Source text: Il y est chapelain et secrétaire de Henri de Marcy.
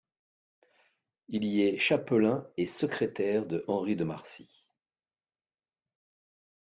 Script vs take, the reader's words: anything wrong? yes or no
no